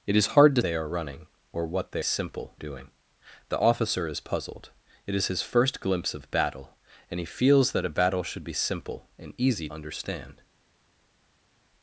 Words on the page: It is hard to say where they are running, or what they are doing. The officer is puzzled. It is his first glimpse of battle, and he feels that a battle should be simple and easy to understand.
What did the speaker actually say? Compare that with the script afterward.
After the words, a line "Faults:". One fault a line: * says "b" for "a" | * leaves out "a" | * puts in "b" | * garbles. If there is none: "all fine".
It is hard to they are running, or what they simple doing. The officer is puzzled. It is his first glimpse of battle, and he feels that a battle should be simple and easy understand.
Faults:
* leaves out "say where"
* says "simple" for "are"
* leaves out "to"